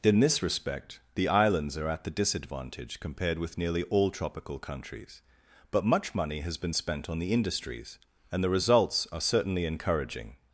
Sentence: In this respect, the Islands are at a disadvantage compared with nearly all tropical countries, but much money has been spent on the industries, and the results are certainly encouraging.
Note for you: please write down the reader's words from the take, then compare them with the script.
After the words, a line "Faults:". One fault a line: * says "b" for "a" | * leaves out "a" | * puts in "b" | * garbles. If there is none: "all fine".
In this respect, the Islands are at the disadvantage compared with nearly all tropical countries, but much money has been spent on the industries, and the results are certainly encouraging.
Faults:
* says "the" for "a"